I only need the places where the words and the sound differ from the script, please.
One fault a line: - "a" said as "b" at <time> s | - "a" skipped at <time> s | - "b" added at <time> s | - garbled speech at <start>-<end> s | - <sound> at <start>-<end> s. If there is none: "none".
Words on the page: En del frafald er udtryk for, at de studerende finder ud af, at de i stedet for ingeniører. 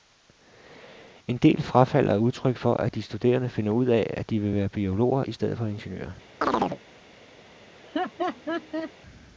- "vil være biologer" added at 4.4 s
- chirp at 6.4-6.8 s
- laugh at 7.7-8.9 s